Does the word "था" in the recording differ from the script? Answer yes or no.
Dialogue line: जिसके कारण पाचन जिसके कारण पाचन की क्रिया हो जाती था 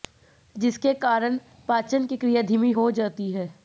yes